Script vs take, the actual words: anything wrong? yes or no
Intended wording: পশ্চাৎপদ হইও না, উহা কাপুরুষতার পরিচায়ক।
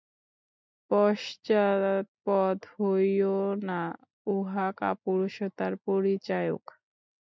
no